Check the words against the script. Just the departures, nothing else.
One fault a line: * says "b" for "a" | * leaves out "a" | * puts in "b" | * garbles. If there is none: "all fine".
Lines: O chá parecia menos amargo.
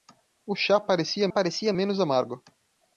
* puts in "parecia"